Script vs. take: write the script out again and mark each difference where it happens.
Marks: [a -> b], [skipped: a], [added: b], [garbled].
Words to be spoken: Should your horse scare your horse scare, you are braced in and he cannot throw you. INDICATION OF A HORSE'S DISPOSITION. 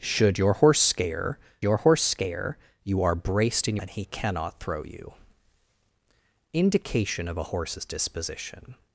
Should your horse scare your horse scare, you are braced in and he cannot throw you. INDICATION OF A HORSE'S DISPOSITION.